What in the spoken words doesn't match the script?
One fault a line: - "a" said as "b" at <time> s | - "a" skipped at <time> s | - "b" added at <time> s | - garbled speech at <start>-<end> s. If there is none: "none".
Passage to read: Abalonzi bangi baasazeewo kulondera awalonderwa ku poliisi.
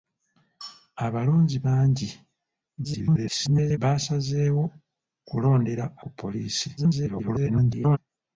- garbled speech at 2.8-3.8 s
- "awalonderwa" skipped at 5.8 s
- garbled speech at 6.8-8.0 s